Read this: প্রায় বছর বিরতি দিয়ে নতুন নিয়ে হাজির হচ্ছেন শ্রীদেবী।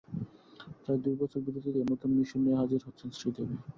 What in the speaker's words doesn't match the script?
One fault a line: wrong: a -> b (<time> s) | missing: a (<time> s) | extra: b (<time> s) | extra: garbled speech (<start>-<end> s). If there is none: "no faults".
extra: দুই (1.0 s)
extra: মিশন (2.2 s)